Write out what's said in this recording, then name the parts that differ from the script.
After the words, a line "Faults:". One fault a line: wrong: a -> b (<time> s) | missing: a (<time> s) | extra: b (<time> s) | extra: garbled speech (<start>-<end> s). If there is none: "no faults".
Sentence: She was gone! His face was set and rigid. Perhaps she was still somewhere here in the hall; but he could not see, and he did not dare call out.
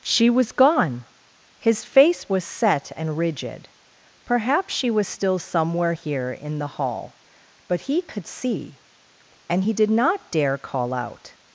She was gone! His face was set and rigid. Perhaps she was still somewhere here in the hall; but he could see, and he did not dare call out.
Faults:
missing: not (8.3 s)